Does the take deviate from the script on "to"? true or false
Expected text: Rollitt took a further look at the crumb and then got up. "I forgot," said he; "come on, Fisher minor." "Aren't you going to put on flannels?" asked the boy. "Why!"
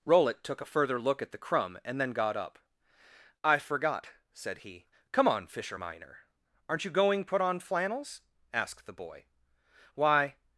true